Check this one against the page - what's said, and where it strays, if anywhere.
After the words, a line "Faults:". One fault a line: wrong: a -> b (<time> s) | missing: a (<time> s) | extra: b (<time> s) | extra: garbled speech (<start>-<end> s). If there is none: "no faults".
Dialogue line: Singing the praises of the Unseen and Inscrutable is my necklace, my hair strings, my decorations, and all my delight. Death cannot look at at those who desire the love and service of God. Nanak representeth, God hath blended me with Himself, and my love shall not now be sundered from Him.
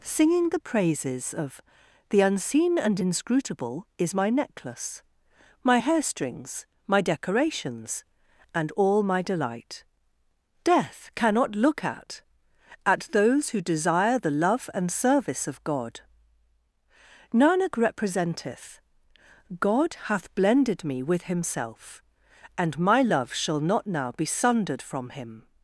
Singing the praises of the Unseen and Inscrutable is my necklace, my hair strings, my decorations, and all my delight. Death cannot look at at those who desire the love and service of God. Nanak representeth, God hath blended me with Himself, and my love shall not now be sundered from Him.
Faults:
no faults